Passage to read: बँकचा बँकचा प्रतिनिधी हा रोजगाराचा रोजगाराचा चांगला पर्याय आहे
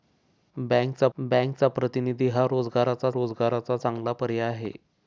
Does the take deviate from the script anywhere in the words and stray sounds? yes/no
no